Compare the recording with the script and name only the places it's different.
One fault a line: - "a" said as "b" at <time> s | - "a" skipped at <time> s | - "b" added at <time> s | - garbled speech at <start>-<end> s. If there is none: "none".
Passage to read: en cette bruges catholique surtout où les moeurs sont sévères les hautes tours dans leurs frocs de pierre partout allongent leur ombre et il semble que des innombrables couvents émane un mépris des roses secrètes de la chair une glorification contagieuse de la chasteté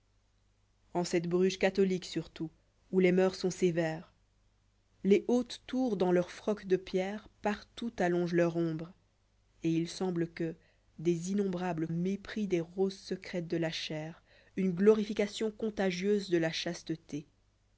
- "couvents émane un" skipped at 11.9 s